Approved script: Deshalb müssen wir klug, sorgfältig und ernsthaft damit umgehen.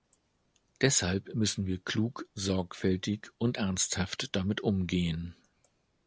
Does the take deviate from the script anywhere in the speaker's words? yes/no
no